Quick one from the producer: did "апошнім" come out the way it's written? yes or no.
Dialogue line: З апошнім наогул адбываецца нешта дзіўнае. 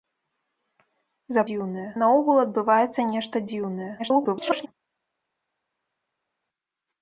no